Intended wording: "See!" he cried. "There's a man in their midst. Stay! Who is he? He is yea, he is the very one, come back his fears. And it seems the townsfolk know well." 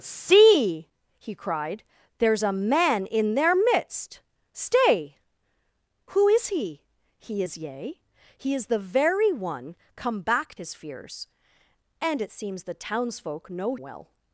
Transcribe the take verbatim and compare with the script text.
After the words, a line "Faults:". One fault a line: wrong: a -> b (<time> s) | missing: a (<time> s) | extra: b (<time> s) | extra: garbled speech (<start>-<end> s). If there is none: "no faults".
"See!" he cried. "There's a man in their midst. Stay! Who is he? He is yea, he is the very one, come back his fears. And it seems the townsfolk know well."
Faults:
no faults